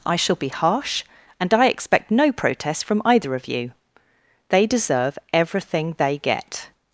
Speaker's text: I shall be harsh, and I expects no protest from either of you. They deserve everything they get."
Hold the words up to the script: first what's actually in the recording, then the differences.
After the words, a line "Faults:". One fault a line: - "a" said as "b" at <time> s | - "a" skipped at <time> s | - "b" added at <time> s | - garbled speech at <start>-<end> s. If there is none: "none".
I shall be harsh, and I expect no protest from either of you. They deserve everything they get."
Faults:
- "expects" said as "expect" at 1.7 s